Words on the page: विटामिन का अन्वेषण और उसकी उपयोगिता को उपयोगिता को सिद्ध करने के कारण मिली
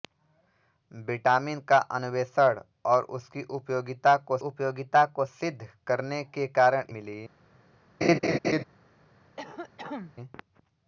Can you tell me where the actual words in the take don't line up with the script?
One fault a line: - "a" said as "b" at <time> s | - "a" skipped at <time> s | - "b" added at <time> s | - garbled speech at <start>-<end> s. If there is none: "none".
none